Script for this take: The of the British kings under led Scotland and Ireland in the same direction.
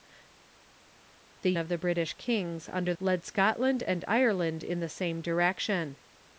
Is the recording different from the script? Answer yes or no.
no